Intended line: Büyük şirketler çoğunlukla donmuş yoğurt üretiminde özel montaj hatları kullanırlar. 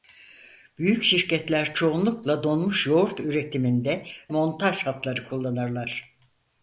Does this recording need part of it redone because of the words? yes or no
yes